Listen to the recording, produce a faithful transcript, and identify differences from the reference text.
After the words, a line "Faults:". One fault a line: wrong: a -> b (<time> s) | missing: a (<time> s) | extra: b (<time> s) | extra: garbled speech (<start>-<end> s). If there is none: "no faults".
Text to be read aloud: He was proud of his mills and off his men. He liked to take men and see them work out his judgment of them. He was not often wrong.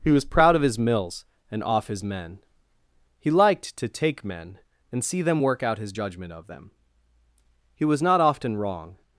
He was proud of his mills and off his men. He liked to take men and see them work out his judgment of them. He was not often wrong.
Faults:
no faults